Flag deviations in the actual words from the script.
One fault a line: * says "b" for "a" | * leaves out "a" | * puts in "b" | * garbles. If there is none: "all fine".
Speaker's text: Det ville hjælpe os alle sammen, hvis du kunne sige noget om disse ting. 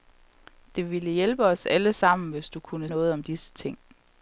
* leaves out "sige"